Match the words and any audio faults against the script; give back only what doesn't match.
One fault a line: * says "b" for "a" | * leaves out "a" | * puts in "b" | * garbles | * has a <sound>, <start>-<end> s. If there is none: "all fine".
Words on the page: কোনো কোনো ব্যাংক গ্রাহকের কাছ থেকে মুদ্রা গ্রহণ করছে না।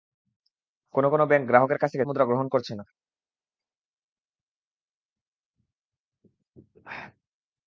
all fine